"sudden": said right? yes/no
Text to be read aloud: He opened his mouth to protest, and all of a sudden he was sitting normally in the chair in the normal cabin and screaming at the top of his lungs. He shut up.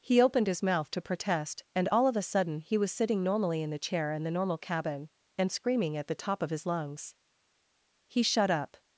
yes